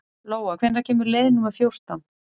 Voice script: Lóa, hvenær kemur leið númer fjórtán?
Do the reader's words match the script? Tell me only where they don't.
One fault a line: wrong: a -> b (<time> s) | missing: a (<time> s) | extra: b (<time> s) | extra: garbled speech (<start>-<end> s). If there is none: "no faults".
no faults